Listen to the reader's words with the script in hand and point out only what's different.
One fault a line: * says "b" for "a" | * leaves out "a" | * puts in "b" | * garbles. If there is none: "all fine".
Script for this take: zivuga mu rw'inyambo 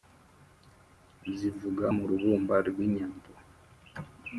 * puts in "rubumba"